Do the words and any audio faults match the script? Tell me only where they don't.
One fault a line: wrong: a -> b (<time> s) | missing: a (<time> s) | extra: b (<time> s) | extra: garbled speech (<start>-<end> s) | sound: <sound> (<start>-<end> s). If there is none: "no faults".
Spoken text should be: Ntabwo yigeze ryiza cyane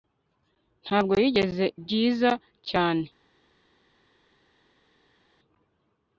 no faults